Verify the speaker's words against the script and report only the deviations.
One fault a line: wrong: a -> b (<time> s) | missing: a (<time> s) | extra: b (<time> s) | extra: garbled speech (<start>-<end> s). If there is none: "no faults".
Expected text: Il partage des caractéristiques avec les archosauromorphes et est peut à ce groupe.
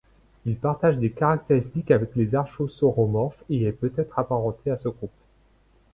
extra: être apparenté (4.0 s)